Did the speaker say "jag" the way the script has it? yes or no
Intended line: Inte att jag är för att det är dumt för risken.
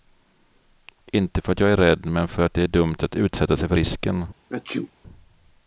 yes